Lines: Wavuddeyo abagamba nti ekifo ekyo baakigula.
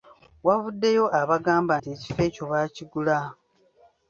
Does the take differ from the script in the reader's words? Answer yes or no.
no